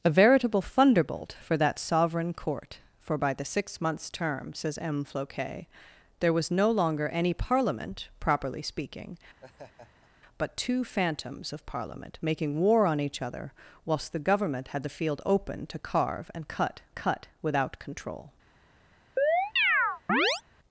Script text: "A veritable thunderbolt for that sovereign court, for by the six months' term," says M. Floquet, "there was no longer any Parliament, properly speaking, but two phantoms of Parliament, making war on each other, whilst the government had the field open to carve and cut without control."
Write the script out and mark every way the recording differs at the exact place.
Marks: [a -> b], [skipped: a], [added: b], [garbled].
"A veritable thunderbolt for that sovereign court, for by the six months' term," says M. Floquet, "there was no longer any Parliament, properly speaking, but two phantoms of Parliament, making war on each other, whilst the government had the field open to carve and cut [added: cut] without control."